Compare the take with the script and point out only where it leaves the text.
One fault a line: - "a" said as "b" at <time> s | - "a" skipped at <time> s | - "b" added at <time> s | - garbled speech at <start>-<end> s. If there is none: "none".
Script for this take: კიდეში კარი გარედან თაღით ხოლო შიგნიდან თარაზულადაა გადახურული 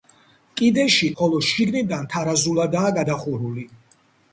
- "კარი გარედან თაღით" skipped at 1.1 s